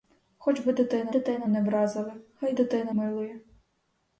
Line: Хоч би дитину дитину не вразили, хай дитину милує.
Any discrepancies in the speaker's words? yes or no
no